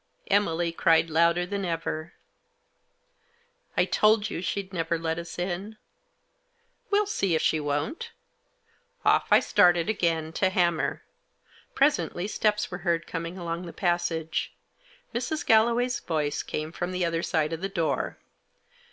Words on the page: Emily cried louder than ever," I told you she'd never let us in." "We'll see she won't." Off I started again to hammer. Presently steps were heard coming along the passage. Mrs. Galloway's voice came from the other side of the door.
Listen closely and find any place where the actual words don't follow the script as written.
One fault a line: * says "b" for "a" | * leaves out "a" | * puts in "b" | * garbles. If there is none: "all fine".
all fine